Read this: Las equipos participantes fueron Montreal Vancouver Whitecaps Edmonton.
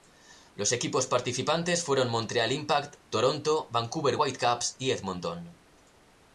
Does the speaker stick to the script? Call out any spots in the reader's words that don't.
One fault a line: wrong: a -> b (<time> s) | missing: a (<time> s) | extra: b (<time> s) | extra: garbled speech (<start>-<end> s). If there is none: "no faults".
wrong: Las -> Los (0.6 s)
extra: Impact Toronto (2.5 s)
extra: y (4.8 s)